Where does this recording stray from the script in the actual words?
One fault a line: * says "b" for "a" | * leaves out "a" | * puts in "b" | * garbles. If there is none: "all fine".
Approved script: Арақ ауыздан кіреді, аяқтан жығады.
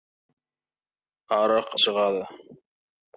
* leaves out "ауыздан кіреді аяқтан"